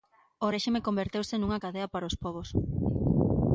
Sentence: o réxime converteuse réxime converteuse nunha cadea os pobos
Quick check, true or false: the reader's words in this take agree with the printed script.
false